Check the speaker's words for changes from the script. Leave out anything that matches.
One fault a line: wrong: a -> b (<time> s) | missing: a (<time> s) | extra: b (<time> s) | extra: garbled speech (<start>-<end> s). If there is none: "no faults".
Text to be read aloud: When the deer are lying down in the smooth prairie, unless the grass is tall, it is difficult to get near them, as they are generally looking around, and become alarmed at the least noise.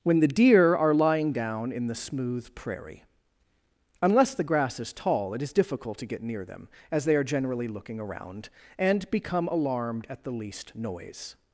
no faults